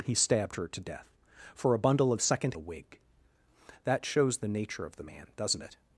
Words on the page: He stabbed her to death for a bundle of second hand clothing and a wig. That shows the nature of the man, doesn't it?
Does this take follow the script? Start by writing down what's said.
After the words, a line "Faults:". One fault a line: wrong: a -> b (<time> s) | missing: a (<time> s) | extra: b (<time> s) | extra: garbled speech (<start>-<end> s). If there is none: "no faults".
He stabbed her to death for a bundle of second a wig. That shows the nature of the man, doesn't it?
Faults:
missing: hand clothing and (2.5 s)